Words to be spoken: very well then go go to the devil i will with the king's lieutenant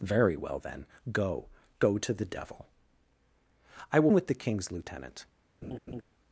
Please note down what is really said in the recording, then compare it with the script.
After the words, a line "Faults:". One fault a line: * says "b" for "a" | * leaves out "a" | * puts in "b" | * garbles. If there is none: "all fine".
very well then go go to the devil i will with the king's lieutenant
Faults:
all fine